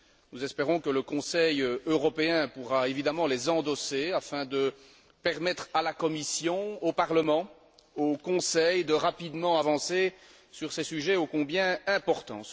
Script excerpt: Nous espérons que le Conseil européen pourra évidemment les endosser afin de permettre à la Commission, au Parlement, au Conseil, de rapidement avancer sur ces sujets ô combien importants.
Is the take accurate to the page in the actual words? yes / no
yes